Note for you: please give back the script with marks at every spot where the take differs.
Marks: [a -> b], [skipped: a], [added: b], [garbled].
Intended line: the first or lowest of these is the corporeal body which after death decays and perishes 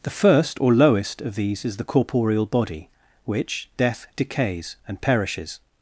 the first or lowest of these is the corporeal body which [skipped: after] death decays and perishes